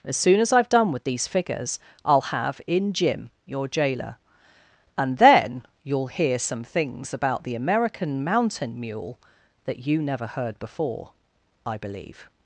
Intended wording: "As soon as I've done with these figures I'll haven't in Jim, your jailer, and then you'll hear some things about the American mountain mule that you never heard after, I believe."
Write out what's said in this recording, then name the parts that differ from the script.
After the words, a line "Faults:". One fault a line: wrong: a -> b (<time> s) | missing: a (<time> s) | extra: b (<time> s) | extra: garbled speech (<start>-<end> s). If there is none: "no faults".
"As soon as I've done with these figures I'll have in Jim, your jailer, and then you'll hear some things about the American mountain mule that you never heard before, I believe."
Faults:
wrong: haven't -> have (2.2 s)
wrong: after -> before (10.6 s)